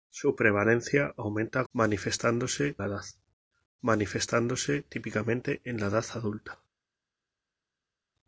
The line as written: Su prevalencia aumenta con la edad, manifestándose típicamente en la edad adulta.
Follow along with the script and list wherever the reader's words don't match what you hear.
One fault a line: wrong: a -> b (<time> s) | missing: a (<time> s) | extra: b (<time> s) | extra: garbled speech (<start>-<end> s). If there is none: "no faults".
wrong: con -> manifestándose (1.7 s)